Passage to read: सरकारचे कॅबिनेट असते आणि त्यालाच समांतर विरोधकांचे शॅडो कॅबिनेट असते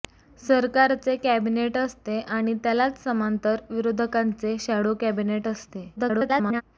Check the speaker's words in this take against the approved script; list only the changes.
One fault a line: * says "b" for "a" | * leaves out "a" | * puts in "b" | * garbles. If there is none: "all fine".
* garbles